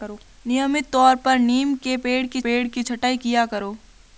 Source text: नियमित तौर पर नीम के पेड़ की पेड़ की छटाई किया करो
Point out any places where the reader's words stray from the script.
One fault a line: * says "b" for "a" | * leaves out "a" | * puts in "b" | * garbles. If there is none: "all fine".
all fine